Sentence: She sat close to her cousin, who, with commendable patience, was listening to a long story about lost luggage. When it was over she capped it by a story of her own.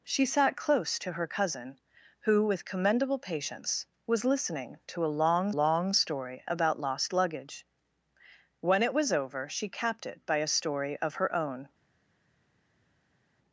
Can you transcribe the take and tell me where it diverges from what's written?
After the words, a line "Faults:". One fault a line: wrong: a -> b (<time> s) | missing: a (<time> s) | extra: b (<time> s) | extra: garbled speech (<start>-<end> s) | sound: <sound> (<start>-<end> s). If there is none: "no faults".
She sat close to her cousin, who, with commendable patience, was listening to a long long story about lost luggage. When it was over she capped it by a story of her own.
Faults:
extra: long (5.6 s)